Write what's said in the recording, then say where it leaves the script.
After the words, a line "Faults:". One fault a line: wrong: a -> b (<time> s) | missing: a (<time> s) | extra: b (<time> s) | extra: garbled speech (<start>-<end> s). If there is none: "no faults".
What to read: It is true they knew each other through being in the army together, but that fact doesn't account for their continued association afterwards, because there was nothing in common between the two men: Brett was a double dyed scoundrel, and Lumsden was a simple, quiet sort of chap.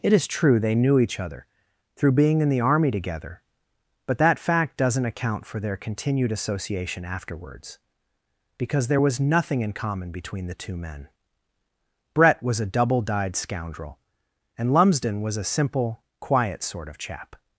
It is true they knew each other through being in the army together, but that fact doesn't account for their continued association afterwards, because there was nothing in common between the two men: Brett was a double dyed scoundrel, and Lumsden was a simple, quiet sort of chap.
Faults:
no faults